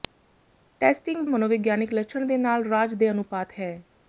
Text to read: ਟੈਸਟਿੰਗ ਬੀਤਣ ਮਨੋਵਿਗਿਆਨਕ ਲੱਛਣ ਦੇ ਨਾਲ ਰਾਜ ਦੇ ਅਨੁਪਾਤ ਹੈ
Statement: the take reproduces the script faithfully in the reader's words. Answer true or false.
false